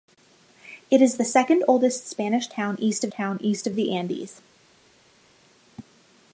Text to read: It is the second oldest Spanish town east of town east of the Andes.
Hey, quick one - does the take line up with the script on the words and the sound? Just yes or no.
yes